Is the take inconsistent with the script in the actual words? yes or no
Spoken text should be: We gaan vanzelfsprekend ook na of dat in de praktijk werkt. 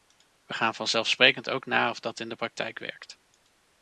no